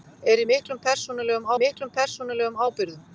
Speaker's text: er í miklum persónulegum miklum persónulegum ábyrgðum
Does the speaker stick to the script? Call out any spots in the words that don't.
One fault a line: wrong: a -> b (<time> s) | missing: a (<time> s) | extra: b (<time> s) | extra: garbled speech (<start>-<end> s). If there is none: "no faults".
no faults